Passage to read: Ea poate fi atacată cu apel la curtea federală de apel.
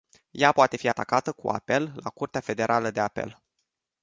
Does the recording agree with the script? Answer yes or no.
yes